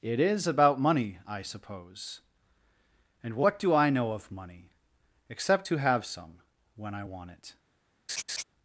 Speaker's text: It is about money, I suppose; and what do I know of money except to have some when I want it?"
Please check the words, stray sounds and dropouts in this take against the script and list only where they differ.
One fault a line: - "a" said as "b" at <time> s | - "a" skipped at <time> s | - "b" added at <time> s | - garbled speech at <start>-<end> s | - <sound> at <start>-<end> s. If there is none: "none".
- laugh at 8.1-8.4 s